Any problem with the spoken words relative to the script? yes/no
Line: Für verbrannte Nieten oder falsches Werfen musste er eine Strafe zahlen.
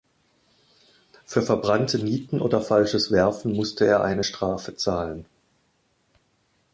no